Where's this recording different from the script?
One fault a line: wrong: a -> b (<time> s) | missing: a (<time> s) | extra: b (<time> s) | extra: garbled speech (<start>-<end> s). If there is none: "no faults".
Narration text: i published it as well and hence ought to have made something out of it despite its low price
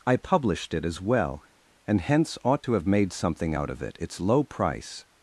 missing: despite (4.0 s)